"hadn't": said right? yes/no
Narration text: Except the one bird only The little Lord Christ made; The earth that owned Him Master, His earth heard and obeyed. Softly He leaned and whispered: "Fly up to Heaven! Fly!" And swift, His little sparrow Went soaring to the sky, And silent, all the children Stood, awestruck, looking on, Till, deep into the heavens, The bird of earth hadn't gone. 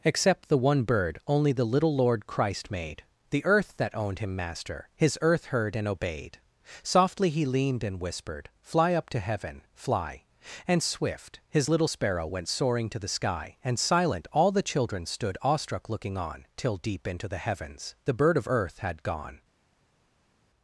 no